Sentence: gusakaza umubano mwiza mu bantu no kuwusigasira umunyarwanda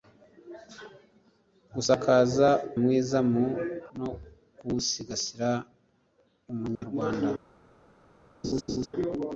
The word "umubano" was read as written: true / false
false